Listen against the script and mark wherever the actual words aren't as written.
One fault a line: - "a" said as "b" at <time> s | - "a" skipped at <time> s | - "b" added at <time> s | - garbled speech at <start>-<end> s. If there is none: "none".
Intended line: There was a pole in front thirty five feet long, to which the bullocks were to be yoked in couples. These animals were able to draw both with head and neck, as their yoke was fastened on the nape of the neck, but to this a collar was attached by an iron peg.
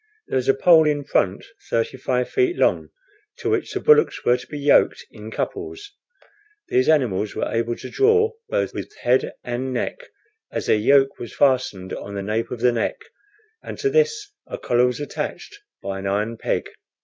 - "but" said as "and" at 13.6 s